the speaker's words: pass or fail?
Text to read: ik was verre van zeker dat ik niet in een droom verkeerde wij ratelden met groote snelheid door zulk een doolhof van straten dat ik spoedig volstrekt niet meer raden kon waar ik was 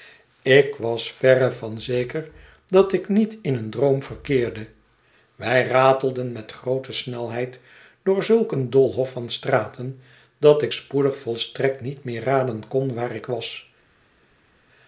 pass